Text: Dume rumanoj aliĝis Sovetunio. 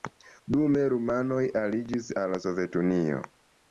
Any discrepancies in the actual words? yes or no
yes